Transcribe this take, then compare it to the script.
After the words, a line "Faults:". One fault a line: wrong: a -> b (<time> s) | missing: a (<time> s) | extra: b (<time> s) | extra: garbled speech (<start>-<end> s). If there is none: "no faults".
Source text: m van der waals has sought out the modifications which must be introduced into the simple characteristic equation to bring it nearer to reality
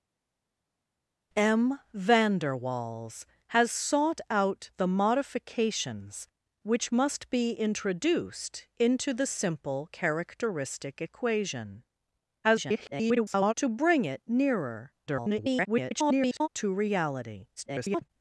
m van der waals has sought out the modifications which must be introduced into the simple characteristic equation [garbled] to bring it nearer [garbled] to reality [garbled]
Faults:
extra: garbled speech (12.4-13.5 s)
extra: garbled speech (15.1-16.5 s)
extra: garbled speech (17.6-18.1 s)